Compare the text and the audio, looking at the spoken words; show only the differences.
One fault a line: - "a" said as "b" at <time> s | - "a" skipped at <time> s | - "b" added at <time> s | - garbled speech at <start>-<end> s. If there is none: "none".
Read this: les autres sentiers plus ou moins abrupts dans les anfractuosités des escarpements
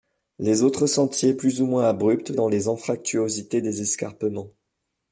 none